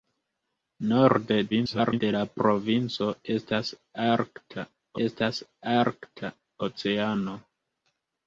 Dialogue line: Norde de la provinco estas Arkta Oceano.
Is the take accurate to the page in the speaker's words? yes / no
no